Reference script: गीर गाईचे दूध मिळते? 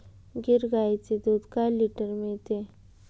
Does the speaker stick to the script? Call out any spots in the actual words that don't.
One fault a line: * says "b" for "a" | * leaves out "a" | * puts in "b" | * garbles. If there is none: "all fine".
* puts in "काय लिटर"